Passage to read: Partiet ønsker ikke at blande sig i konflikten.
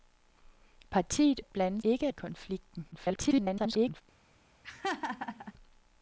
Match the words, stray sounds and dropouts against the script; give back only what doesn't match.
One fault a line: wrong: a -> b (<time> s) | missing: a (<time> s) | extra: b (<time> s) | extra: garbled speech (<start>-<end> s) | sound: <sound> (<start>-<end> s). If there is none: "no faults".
missing: ønsker ikke (1.4 s)
wrong: sig -> ikke (1.8 s)
extra: garbled speech (2.9-4.0 s)
sound: laugh (4.6-5.5 s)